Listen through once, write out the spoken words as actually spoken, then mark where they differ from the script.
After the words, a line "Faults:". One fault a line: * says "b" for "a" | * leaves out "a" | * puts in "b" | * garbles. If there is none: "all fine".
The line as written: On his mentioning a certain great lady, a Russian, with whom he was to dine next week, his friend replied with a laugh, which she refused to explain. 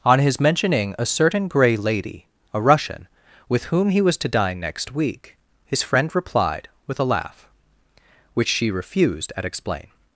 On his mentioning a certain grey lady, a Russian, with whom he was to dine next week, his friend replied with a laugh, which she refused at explain.
Faults:
* says "grey" for "great"
* says "at" for "to"